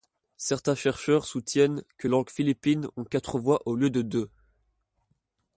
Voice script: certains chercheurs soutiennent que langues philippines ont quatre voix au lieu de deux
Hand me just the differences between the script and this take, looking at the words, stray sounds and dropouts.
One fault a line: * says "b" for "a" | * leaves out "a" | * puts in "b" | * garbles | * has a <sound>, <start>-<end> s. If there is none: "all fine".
all fine